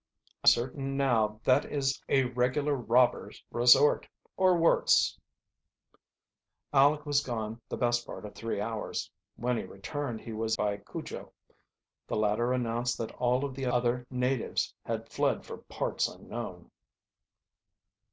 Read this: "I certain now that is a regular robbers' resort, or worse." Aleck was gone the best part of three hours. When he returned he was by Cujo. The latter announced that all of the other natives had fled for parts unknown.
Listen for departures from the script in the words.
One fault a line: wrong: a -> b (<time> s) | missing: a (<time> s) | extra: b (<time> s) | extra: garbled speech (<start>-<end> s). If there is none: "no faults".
no faults